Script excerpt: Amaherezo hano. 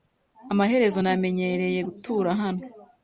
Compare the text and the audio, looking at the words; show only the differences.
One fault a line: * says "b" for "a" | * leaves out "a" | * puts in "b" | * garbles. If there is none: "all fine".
* puts in "namenyereye gutura"